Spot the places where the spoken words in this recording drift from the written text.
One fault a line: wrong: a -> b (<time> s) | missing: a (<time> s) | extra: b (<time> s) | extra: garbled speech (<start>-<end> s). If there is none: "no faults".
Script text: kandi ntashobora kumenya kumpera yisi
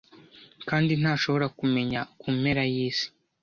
no faults